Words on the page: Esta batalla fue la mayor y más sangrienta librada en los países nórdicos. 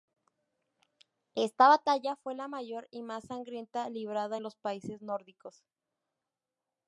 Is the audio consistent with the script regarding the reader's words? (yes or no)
yes